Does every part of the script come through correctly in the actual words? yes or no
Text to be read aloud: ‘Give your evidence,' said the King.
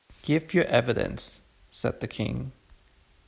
yes